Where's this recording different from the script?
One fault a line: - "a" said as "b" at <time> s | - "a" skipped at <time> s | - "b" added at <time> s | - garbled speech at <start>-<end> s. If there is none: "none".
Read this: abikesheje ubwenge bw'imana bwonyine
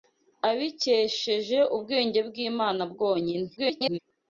- garbled speech at 3.6-4.0 s